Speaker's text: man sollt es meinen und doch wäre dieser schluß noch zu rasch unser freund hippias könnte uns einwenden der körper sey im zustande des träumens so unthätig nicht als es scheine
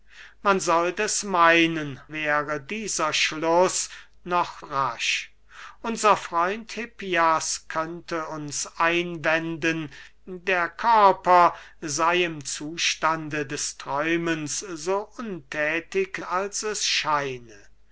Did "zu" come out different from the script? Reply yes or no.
yes